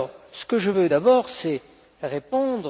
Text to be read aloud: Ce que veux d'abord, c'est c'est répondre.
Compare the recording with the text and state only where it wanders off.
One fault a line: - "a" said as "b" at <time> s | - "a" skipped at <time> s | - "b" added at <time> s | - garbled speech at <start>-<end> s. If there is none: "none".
- "je" added at 0.6 s
- "c'est" skipped at 1.6 s